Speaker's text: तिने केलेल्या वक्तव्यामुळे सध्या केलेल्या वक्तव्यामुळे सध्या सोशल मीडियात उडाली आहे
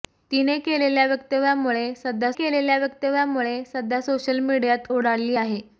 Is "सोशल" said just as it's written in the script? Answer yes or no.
yes